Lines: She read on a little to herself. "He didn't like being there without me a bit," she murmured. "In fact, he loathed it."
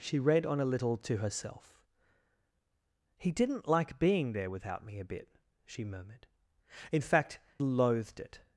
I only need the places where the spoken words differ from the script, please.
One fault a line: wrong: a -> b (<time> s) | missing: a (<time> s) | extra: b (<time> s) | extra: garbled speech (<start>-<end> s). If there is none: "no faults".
missing: he (7.4 s)